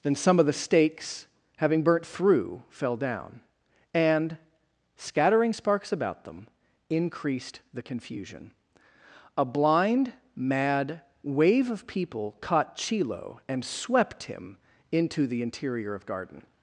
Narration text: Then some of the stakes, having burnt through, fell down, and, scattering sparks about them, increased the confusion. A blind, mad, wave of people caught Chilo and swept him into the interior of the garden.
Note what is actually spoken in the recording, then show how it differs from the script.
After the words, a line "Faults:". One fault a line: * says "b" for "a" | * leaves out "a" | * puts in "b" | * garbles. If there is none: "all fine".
Then some of the stakes, having burnt through, fell down, and, scattering sparks about them, increased the confusion. A blind, mad, wave of people caught Chilo and swept him into the interior of garden.
Faults:
* leaves out "the"